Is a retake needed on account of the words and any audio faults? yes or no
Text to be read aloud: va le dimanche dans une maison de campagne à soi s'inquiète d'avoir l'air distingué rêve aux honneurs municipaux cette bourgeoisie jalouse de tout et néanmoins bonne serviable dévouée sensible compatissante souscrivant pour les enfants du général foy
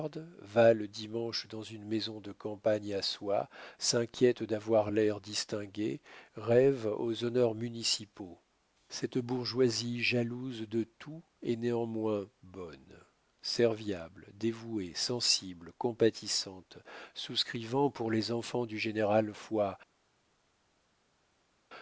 no